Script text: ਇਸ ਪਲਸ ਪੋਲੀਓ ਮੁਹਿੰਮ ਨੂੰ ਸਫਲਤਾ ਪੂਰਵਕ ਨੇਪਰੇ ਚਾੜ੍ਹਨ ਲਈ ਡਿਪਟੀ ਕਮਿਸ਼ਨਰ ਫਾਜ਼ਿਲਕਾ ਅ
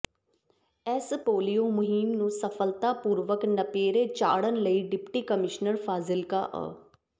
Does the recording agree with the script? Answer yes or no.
no